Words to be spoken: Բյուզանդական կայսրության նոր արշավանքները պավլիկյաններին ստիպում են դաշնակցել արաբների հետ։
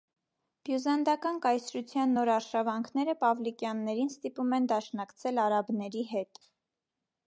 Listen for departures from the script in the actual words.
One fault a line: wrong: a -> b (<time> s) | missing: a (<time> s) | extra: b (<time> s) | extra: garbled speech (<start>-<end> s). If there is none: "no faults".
no faults